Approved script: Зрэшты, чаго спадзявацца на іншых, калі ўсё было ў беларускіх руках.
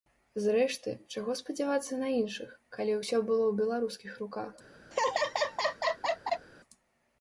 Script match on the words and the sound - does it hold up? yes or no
no